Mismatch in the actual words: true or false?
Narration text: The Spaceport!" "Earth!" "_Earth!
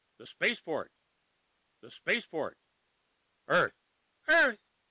true